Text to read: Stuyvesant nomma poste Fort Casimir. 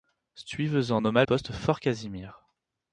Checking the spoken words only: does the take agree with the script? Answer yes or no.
yes